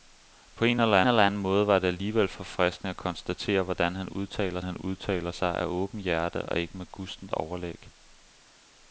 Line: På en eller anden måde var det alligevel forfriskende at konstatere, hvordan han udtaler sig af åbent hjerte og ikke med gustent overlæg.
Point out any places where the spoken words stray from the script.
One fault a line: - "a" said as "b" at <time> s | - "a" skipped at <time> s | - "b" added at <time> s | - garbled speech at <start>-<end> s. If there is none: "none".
- "eller" added at 1.1 s
- "han udtaler" added at 4.6 s